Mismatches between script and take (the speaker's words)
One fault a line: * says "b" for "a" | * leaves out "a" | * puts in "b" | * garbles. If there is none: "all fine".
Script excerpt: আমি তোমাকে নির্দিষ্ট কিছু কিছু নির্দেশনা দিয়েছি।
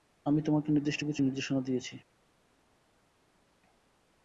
* leaves out "কিছু"